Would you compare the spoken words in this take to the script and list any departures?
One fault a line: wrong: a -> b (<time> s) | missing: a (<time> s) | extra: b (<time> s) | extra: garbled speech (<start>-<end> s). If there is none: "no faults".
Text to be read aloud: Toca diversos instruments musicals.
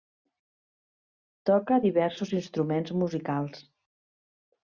no faults